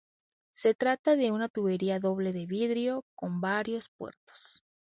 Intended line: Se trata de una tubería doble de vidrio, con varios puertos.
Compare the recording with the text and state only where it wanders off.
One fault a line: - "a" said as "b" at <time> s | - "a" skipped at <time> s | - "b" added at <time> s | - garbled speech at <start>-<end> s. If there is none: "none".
none